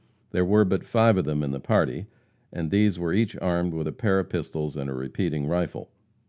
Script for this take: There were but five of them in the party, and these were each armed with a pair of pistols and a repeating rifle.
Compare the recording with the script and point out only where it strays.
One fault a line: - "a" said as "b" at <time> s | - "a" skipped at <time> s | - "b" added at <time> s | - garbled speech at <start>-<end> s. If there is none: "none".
none